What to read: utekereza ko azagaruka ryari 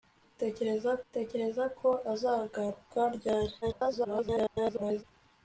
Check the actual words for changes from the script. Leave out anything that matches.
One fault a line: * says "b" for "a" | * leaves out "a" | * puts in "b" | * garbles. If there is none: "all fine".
* puts in "utekereza"
* garbles